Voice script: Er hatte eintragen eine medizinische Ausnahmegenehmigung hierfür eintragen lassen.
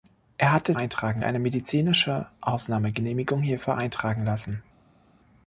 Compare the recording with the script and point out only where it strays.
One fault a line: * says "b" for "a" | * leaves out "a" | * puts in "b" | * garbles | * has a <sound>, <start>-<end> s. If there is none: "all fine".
all fine